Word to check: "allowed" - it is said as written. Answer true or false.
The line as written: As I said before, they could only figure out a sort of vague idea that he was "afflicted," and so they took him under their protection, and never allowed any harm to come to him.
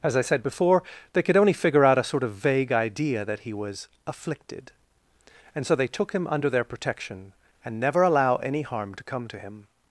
false